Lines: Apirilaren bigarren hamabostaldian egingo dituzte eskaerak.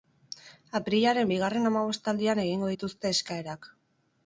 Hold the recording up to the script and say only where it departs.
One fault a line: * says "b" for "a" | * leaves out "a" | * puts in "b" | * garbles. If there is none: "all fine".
all fine